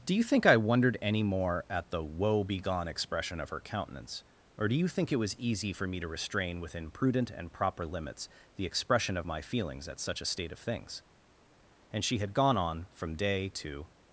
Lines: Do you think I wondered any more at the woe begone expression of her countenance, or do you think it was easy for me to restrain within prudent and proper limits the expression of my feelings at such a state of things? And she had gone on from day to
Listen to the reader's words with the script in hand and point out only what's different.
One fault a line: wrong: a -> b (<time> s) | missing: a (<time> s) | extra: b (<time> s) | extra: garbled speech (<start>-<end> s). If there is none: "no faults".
no faults